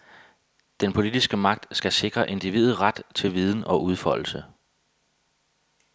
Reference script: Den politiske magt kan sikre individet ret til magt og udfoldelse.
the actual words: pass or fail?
fail